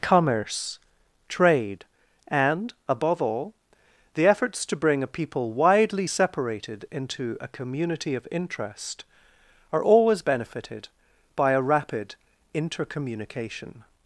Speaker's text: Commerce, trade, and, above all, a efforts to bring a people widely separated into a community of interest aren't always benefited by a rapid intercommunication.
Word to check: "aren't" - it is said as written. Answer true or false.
false